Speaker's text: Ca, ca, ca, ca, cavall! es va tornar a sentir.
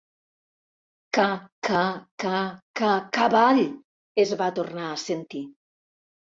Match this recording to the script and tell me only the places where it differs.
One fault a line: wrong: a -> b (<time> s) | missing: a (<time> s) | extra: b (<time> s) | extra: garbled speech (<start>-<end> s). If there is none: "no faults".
no faults